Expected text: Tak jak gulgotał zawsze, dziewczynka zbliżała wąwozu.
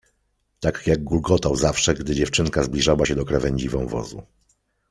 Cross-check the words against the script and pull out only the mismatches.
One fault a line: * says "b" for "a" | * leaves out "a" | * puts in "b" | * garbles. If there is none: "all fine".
* puts in "gdy"
* puts in "się do krawędzi"